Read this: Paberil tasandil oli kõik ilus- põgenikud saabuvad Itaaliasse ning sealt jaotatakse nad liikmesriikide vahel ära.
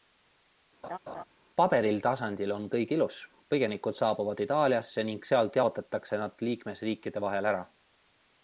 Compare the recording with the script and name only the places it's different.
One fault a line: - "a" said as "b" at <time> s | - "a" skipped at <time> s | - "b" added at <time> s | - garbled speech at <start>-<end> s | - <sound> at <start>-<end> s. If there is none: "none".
- laugh at 0.8-1.2 s
- "oli" said as "on" at 2.5 s